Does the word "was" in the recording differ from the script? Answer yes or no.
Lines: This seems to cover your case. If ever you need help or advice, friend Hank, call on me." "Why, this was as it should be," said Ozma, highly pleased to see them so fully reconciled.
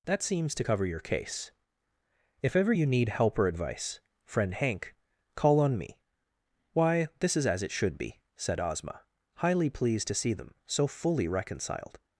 yes